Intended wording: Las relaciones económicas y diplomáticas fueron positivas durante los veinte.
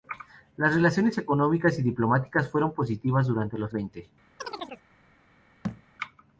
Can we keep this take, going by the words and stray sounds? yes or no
no